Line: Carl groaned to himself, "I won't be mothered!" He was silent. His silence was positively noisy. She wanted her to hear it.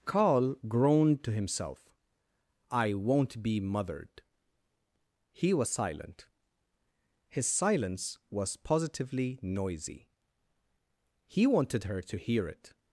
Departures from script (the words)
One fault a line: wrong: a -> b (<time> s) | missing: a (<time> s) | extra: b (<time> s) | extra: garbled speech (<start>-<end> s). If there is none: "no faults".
wrong: She -> He (11.3 s)